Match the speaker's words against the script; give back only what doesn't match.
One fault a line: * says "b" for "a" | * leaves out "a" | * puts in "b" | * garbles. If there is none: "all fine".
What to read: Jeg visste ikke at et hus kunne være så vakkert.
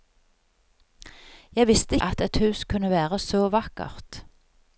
* leaves out "ikke"